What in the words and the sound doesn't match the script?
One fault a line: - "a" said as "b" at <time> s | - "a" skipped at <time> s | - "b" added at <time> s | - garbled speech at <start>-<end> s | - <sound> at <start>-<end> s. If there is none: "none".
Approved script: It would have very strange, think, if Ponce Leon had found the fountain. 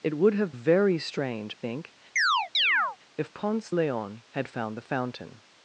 - chirp at 2.2-3.0 s